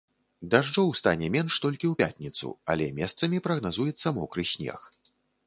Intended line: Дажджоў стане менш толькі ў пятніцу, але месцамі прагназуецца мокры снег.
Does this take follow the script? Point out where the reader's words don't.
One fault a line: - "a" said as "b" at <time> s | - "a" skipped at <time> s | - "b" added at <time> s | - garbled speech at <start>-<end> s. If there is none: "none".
none